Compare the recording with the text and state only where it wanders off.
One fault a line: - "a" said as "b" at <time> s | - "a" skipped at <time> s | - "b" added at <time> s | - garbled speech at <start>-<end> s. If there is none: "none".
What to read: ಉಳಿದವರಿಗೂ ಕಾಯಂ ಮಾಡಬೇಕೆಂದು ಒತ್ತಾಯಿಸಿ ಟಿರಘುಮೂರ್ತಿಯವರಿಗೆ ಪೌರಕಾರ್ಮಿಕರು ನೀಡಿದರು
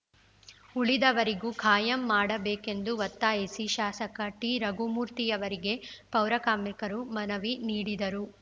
- "ಶಾಸಕ" added at 3.8 s
- "ಮನವಿ" added at 7.1 s